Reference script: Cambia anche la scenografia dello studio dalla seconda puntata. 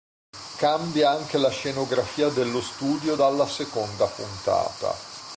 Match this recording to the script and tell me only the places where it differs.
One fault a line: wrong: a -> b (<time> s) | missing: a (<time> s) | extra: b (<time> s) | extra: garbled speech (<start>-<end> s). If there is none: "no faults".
no faults